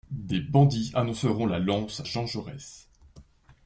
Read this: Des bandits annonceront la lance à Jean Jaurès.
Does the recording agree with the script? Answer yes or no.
no